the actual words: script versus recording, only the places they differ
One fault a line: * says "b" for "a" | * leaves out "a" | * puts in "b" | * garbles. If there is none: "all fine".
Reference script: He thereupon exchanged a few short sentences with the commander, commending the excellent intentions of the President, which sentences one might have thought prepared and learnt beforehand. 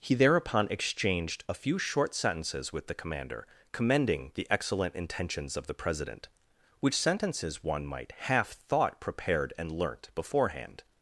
* says "half" for "have"